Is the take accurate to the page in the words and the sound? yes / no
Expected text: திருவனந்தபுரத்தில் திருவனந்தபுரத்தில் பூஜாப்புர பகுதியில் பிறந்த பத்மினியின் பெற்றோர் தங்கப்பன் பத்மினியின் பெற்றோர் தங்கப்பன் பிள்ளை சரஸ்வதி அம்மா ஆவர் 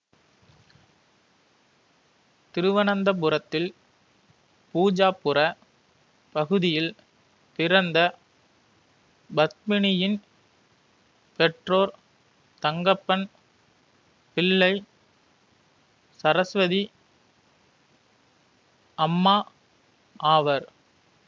no